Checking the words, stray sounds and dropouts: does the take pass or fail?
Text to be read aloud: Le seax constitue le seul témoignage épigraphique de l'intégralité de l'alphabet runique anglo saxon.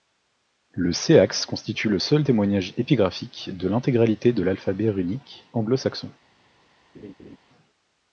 fail